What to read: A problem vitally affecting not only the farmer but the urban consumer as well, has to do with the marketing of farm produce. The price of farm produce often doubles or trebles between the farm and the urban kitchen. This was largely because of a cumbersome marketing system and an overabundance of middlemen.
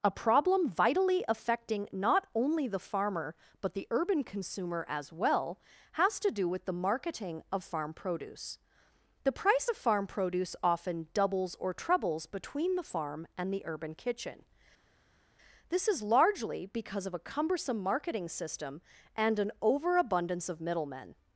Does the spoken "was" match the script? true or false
false